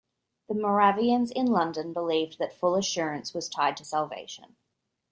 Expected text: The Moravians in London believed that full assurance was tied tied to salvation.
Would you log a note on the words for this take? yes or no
yes